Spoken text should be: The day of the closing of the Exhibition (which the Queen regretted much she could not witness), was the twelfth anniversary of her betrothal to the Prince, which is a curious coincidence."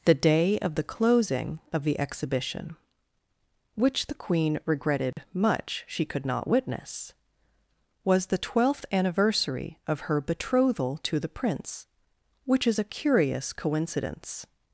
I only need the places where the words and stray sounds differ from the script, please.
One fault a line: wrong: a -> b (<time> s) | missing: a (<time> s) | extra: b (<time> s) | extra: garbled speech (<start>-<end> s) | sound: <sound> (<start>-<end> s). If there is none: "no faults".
sound: dropout (5.1-5.2 s)